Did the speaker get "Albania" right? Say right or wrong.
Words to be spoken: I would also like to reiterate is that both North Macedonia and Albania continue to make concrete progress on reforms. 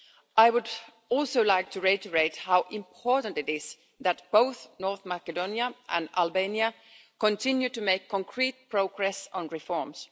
right